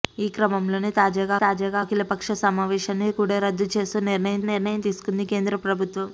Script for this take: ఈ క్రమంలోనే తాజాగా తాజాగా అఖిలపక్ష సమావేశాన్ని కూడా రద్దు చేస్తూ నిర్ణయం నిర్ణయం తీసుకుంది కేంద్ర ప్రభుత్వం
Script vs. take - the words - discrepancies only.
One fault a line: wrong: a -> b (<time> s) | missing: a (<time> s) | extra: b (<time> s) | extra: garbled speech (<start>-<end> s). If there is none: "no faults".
no faults